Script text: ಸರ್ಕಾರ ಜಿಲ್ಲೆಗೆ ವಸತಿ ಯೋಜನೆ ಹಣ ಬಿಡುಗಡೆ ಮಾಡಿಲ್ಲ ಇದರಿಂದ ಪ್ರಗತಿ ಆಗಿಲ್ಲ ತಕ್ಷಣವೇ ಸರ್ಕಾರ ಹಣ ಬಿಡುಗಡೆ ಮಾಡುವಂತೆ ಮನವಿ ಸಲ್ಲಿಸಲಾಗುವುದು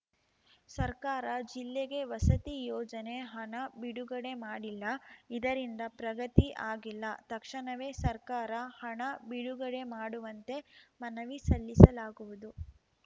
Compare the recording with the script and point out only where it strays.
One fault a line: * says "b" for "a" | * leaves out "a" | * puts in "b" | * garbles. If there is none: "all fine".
all fine